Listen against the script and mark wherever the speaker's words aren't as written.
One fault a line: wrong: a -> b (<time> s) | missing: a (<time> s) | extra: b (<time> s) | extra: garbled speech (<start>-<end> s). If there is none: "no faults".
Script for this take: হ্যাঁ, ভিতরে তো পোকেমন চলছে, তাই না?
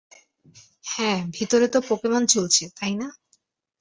no faults